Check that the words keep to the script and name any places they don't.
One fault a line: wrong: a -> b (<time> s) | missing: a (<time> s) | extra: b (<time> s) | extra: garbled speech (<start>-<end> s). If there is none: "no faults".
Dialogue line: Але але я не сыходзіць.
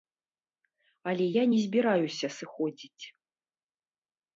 missing: але (1.2 s)
extra: збіраюся (1.7 s)